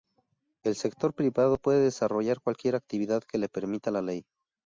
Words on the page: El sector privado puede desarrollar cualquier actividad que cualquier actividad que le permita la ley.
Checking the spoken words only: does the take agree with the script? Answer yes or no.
no